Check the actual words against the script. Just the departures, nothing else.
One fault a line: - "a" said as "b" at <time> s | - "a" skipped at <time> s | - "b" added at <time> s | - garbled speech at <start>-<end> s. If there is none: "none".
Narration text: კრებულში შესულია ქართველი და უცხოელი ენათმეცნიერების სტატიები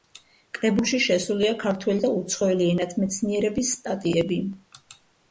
none